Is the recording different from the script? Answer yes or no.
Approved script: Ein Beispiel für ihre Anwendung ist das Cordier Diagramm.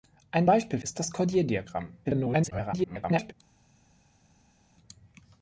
yes